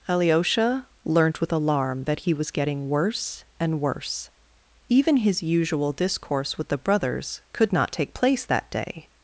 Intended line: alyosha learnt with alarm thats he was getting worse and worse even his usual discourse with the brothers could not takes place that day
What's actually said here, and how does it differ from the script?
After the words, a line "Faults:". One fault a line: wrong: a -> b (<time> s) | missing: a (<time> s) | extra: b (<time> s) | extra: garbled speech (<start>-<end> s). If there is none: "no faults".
alyosha learnt with alarm that he was getting worse and worse even his usual discourse with the brothers could not take place that day
Faults:
wrong: thats -> that (2.0 s)
wrong: takes -> take (7.9 s)